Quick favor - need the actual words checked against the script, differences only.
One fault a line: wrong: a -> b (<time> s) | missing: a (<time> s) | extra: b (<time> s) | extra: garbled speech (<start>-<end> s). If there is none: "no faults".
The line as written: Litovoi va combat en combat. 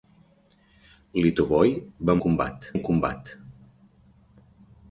no faults